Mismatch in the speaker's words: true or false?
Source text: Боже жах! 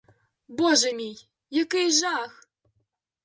true